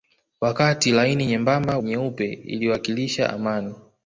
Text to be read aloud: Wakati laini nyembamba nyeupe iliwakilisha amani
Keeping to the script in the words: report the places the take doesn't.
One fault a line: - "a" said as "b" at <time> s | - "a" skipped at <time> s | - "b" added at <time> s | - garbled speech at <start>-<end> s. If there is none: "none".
none